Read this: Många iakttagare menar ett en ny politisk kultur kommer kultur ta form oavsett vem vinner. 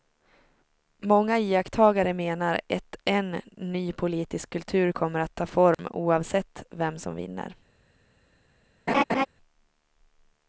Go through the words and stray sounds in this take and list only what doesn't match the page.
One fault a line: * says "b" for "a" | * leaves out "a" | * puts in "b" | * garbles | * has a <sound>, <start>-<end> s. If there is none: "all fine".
* says "att" for "kultur"
* has a dropout, 5.7-5.8 s
* puts in "som"
* has a laugh, 8.9-9.3 s